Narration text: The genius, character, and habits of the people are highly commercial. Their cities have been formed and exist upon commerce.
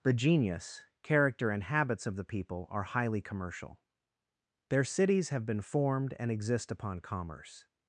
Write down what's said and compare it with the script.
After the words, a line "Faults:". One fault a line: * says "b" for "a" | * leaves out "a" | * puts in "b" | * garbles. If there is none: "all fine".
The genius, character, and habits of the people are highly commercial. Their cities have been formed and exist upon commerce.
Faults:
all fine